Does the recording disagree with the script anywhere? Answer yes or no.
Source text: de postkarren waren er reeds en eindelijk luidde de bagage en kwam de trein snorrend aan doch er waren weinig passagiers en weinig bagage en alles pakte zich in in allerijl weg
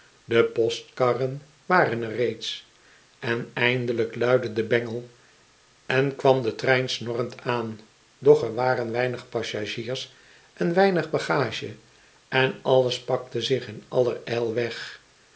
yes